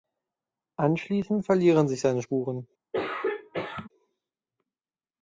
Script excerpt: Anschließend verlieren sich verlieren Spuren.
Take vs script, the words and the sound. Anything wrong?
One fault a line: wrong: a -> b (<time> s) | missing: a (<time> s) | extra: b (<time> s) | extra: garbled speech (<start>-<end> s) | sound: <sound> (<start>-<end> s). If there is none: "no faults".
wrong: verlieren -> seine (2.0 s)
sound: throat clearing (2.9-3.9 s)